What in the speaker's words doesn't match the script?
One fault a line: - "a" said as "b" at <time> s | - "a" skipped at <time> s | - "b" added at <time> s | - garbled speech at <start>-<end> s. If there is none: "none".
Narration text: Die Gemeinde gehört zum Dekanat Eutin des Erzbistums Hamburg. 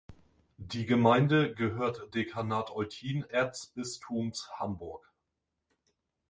- "zum" skipped at 2.1 s
- "des" skipped at 3.3 s